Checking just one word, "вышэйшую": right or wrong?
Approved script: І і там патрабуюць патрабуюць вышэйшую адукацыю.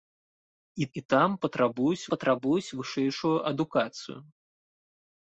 right